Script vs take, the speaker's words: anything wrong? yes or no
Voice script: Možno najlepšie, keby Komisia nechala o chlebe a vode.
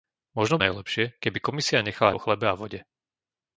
no